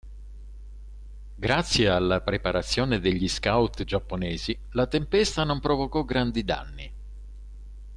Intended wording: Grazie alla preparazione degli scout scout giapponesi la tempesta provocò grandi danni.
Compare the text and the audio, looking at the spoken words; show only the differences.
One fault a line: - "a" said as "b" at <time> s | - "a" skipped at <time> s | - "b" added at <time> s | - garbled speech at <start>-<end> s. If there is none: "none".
- "scout" skipped at 3.9 s
- "non" added at 5.4 s